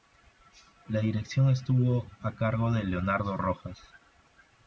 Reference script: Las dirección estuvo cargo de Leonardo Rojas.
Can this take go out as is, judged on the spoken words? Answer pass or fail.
fail